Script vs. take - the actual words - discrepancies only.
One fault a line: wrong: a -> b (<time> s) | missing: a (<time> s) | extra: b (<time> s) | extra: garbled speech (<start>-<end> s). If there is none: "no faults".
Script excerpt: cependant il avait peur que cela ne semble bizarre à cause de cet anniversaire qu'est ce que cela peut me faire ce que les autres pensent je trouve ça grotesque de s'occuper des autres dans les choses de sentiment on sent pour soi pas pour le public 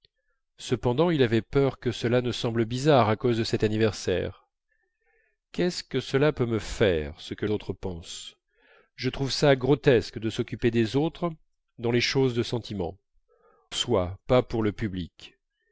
missing: les (7.5 s)
missing: on sent pour (13.0 s)